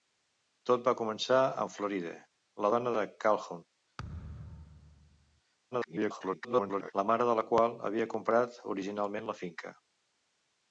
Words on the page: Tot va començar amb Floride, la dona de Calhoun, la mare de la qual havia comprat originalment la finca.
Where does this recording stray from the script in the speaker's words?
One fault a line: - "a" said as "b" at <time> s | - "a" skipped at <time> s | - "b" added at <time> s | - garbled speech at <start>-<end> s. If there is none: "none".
- garbled speech at 5.7-6.9 s